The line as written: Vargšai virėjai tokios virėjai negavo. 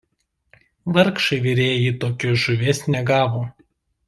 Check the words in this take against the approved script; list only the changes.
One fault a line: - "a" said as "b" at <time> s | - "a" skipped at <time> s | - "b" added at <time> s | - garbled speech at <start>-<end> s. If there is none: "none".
- "virėjai" said as "žuvies" at 2.5 s